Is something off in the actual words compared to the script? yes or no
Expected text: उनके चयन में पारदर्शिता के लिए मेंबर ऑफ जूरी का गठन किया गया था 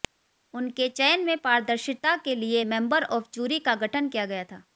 no